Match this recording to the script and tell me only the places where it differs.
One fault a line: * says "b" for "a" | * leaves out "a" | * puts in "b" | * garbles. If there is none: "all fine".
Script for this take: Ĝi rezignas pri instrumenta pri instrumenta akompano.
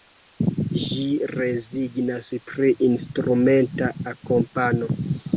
* leaves out "pri instrumenta"